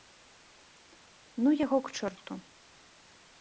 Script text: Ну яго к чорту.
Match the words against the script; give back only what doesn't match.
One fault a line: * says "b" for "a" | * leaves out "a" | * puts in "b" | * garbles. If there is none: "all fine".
all fine